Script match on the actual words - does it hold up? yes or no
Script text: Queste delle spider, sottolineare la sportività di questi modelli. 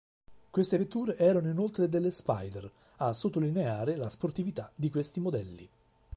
no